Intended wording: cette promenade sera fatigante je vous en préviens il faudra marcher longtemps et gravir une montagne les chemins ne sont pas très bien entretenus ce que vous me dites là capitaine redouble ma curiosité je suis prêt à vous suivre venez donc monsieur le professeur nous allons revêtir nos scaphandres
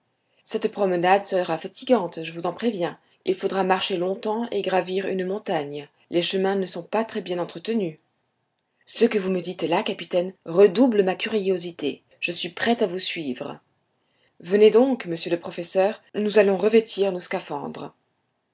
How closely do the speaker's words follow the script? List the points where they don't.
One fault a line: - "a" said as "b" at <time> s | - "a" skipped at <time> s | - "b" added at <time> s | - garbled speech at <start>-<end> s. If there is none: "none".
none